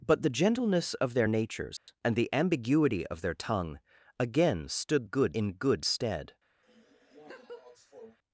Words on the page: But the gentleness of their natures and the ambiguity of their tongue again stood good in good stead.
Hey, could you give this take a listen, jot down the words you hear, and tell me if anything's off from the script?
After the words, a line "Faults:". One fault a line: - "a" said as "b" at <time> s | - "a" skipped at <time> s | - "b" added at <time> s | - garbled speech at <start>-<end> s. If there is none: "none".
But the gentleness of their natures and the ambiguity of their tongue again stood good in good stead.
Faults:
none